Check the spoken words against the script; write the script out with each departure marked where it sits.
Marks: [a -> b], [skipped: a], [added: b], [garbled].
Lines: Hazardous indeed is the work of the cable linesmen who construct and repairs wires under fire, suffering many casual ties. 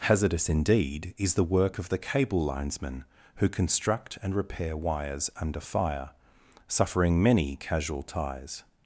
Hazardous indeed is the work of the cable linesmen who construct and [repairs -> repair] wires under fire, suffering many casual ties.